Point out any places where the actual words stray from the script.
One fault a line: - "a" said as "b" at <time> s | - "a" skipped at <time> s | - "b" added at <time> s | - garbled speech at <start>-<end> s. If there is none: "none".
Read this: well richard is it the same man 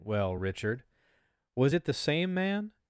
- "is" said as "was" at 1.6 s